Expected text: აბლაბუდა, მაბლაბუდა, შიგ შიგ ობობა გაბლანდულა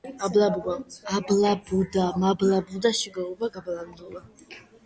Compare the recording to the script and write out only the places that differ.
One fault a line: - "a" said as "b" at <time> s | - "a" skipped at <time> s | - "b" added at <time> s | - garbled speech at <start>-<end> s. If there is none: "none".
- "შიგ" skipped at 3.2 s